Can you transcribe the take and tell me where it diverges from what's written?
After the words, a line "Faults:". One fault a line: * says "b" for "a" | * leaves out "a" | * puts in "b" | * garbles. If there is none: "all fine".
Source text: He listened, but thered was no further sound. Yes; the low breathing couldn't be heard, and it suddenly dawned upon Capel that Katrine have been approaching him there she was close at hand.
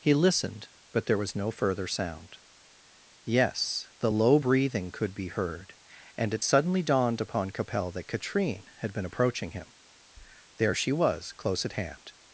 He listened, but there was no further sound. Yes; the low breathing could be heard, and it suddenly dawned upon Capel that Katrine had been approaching him there she was close at hand.
Faults:
* says "there" for "thered"
* says "could" for "couldn't"
* says "had" for "have"